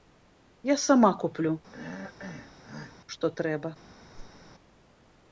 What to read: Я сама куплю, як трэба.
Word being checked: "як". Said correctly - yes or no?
no